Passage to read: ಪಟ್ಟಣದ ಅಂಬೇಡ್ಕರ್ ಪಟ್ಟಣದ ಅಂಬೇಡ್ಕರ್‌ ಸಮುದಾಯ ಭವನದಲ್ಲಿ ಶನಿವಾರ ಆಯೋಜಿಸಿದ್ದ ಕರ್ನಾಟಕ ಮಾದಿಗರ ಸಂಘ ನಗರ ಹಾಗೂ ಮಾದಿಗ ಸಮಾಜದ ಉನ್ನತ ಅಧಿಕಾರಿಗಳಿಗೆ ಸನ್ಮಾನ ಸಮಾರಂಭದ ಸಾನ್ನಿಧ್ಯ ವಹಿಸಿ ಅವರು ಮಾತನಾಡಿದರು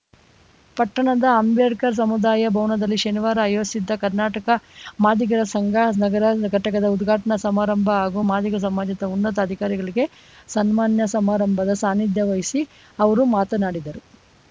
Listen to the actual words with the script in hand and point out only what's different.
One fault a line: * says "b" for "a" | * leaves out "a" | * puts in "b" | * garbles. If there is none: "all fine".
* leaves out "ಪಟ್ಟಣದ ಅಂಬೇಡ್ಕರ್"
* puts in "ಘಟಕದ ಉದ್ಘಾಟನಾ ಸಮಾರಂಭ"